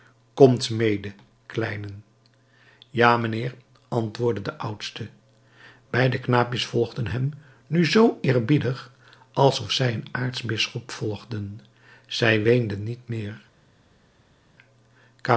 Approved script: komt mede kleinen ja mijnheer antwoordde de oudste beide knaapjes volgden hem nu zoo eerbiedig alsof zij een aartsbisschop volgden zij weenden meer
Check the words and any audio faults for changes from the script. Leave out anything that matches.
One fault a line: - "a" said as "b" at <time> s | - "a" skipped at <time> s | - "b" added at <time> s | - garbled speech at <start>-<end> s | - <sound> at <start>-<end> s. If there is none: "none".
- "niet" added at 12.8 s